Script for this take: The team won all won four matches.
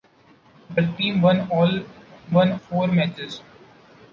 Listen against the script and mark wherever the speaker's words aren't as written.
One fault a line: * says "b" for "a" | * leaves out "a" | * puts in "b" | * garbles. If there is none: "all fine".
all fine